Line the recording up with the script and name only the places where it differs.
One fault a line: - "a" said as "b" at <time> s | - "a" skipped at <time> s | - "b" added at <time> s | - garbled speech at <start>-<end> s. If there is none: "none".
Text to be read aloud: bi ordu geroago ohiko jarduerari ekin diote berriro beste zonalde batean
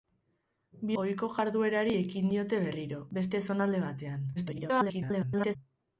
- "ordu geroago" skipped at 0.9 s
- garbled speech at 4.4-5.6 s